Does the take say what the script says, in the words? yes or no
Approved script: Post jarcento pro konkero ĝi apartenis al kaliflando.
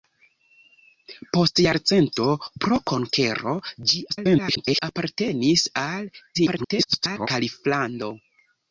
no